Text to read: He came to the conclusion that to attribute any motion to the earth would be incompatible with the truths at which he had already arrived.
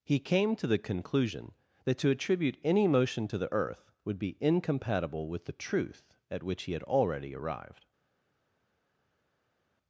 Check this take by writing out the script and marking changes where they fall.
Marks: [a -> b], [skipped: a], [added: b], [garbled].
He came to the conclusion that to attribute any motion to the earth would be incompatible with the [truths -> truth] at which he had already arrived.